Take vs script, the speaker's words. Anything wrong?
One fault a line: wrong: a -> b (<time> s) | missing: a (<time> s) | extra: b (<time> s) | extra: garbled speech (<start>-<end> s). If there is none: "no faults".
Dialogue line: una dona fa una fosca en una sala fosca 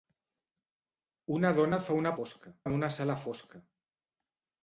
no faults